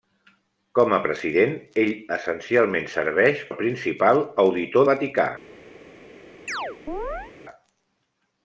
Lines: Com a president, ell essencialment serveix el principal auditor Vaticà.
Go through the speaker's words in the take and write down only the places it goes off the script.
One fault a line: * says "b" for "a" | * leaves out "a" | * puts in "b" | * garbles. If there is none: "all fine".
all fine